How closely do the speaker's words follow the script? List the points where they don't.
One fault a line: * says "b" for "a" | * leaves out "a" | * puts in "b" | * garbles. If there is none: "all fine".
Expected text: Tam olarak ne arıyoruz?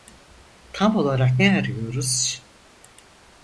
all fine